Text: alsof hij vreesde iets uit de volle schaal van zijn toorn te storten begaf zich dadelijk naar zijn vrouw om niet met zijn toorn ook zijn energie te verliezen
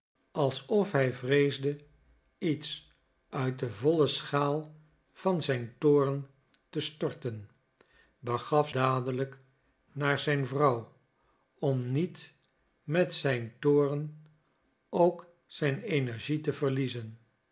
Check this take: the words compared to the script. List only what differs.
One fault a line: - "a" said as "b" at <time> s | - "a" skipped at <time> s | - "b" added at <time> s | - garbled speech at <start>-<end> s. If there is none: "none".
- "zich" skipped at 8.7 s